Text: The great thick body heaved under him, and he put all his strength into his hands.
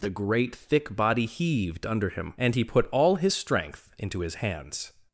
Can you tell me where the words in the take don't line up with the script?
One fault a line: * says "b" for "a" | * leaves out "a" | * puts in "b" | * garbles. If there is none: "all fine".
all fine